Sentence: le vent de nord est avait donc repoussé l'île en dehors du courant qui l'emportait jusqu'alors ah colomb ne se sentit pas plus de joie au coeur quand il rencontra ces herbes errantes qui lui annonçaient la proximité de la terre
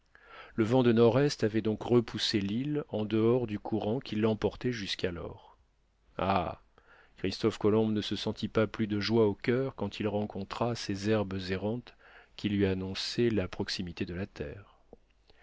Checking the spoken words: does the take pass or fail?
fail